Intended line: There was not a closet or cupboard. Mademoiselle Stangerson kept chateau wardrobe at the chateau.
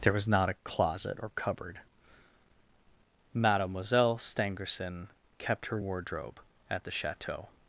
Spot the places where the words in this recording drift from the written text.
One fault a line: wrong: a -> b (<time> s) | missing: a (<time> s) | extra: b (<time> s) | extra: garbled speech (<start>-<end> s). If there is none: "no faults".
wrong: chateau -> her (5.7 s)